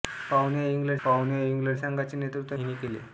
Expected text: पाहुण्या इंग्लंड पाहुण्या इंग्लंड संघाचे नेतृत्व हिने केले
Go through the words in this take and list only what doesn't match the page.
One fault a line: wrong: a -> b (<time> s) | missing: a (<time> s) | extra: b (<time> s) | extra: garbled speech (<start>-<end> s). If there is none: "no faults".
no faults